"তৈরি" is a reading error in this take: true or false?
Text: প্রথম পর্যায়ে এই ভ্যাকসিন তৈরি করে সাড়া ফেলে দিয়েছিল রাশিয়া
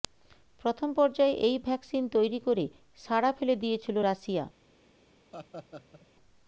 false